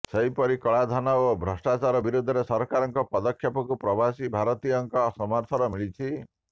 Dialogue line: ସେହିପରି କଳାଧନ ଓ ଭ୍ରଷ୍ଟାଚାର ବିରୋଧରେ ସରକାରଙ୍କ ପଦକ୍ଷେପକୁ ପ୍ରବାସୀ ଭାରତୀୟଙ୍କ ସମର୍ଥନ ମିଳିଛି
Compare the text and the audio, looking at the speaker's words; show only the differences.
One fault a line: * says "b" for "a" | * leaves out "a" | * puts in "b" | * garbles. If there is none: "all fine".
all fine